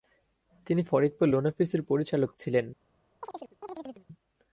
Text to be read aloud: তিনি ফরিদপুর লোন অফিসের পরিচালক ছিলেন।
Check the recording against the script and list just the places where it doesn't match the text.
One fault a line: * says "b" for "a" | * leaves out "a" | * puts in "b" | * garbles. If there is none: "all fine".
all fine